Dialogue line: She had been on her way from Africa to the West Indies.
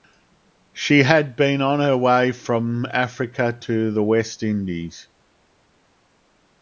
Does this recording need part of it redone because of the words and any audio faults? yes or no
no